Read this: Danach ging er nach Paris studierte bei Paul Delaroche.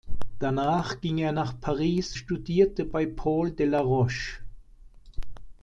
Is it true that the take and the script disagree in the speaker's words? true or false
false